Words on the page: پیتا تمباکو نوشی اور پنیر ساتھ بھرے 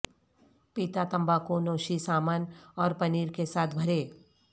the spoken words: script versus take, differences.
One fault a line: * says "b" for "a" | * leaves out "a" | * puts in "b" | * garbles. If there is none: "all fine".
* puts in "سامن"
* puts in "کے"